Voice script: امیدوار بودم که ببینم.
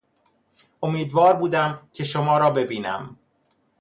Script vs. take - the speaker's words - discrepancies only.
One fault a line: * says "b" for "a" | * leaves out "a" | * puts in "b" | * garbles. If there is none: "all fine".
* puts in "شما را"